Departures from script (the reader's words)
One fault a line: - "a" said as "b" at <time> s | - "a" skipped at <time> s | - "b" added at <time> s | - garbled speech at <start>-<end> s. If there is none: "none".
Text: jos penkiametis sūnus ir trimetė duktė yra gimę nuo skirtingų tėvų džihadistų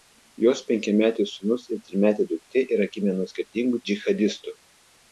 - "tėvų" skipped at 3.8 s